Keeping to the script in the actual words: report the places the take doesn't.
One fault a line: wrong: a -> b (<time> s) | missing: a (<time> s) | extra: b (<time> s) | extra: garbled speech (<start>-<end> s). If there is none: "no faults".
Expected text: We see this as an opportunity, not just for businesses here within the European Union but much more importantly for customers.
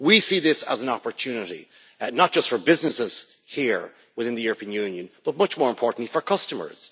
no faults